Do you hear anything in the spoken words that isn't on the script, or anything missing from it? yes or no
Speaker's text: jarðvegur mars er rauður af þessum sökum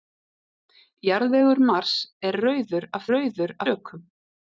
yes